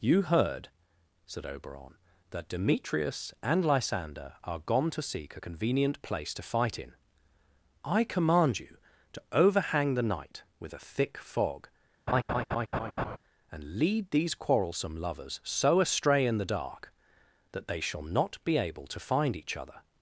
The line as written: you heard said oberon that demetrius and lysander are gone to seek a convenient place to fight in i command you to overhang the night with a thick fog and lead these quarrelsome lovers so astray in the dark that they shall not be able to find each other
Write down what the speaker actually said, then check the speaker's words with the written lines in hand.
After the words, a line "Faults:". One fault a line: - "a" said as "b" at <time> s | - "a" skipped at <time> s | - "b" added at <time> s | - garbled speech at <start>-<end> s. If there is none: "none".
you heard said oberon that demetrius and lysander are gone to seek a convenient place to fight in i command you to overhang the night with a thick fog and lead these quarrelsome lovers so astray in the dark that they shall not be able to find each other
Faults:
none